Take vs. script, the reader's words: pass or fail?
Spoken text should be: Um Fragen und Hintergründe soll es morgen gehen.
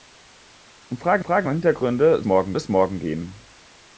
fail